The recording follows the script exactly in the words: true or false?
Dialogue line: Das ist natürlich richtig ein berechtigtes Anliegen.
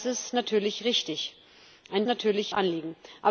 false